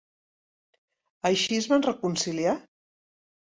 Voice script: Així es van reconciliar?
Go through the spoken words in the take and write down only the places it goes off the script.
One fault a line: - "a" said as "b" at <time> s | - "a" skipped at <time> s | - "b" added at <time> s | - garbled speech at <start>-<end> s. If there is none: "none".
none